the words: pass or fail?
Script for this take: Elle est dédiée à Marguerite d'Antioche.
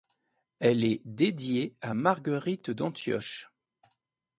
pass